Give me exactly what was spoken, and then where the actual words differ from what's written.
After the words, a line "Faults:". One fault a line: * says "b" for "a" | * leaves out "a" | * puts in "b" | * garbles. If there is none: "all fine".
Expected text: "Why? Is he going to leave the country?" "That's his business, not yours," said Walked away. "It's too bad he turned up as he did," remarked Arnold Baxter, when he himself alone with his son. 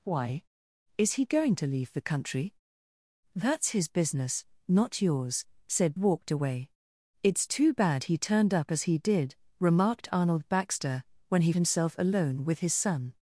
"Why? Is he going to leave the country?" "That's his business, not yours," said Walked away. "It's too bad he turned up as he did," remarked Arnold Baxter, when he himself alone with his son.
Faults:
all fine